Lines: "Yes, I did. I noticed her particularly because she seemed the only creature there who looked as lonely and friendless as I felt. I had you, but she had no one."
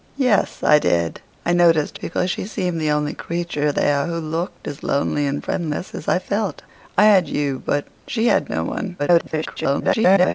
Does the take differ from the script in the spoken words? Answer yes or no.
yes